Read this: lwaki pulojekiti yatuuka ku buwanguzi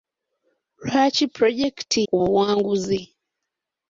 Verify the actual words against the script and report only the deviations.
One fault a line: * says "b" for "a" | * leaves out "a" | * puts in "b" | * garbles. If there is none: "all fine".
* leaves out "yatuuka"